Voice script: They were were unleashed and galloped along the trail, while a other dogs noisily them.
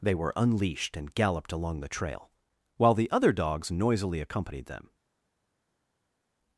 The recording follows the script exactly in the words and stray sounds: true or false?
false